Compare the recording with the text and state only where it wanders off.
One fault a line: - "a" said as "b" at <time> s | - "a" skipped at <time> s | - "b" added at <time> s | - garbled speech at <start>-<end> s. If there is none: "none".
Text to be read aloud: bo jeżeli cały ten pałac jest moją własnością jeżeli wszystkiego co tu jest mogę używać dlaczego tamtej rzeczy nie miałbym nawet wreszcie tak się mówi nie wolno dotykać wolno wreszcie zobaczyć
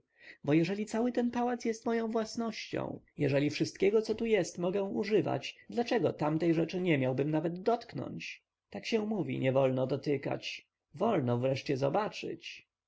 - "wreszcie" said as "dotknąć" at 7.6 s